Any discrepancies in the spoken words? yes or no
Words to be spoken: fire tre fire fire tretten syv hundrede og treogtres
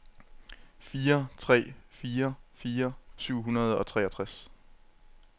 yes